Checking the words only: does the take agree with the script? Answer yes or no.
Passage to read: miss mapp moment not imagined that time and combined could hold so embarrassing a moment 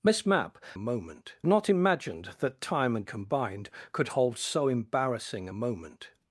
yes